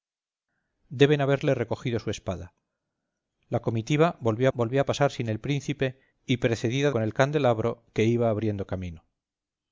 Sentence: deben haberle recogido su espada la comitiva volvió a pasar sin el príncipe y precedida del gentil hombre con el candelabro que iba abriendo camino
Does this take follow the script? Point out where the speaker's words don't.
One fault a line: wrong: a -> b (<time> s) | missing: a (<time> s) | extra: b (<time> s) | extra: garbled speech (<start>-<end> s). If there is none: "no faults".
extra: volvió (4.6 s)
missing: del gentil hombre (6.9 s)